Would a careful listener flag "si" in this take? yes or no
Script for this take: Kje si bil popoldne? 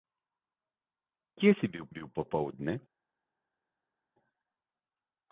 no